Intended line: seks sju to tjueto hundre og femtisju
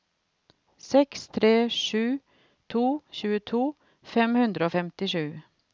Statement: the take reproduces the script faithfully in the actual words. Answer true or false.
false